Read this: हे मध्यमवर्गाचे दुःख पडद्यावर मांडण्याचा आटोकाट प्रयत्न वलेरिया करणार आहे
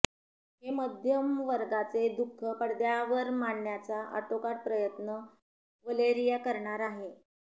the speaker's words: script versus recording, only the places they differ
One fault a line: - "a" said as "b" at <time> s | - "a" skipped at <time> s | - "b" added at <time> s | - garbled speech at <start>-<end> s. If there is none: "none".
none